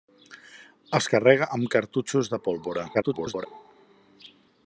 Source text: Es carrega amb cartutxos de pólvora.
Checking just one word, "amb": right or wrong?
right